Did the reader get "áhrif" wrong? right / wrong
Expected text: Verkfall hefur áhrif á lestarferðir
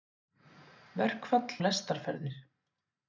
wrong